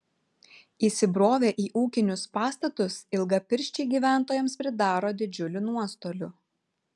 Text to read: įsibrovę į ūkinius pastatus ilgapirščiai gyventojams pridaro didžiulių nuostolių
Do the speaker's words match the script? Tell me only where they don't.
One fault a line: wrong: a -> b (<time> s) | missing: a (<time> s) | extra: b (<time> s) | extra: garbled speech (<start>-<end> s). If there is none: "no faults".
no faults